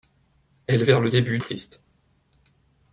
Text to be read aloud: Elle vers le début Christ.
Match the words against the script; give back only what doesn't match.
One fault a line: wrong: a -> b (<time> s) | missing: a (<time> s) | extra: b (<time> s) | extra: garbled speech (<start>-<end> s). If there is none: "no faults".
no faults